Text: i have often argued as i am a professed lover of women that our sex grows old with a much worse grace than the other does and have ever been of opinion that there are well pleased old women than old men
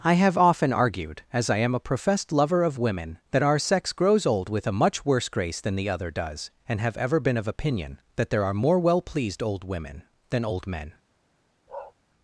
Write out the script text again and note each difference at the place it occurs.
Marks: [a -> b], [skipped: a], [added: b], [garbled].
i have often argued as i am a professed lover of women that our sex grows old with a much worse grace than the other does and have ever been of opinion that there are [added: more] well pleased old women than old men